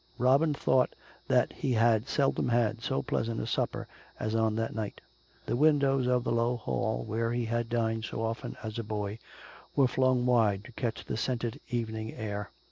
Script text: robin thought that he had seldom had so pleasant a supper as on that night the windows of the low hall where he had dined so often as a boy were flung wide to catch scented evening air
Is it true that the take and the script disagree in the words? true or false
true